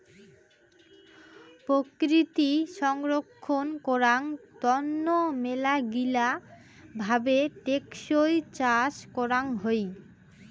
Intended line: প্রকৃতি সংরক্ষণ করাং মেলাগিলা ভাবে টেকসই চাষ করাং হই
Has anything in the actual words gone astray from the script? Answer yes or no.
yes